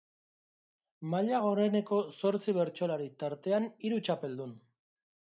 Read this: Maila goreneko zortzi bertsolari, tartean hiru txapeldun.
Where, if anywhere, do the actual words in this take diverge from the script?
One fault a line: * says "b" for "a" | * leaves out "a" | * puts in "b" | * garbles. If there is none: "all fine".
all fine